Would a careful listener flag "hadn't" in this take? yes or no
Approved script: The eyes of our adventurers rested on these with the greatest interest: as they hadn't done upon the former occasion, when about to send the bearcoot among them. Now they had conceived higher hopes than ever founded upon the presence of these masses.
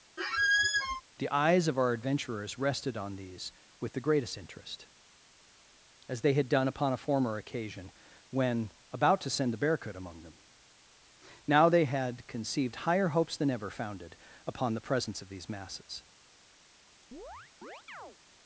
yes